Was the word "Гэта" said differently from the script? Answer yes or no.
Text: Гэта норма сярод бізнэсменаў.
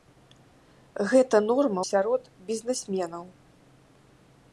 no